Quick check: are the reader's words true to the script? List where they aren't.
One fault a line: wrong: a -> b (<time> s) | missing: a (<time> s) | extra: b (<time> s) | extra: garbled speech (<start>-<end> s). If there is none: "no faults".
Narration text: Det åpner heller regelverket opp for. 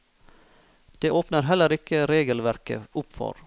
extra: ikke (1.7 s)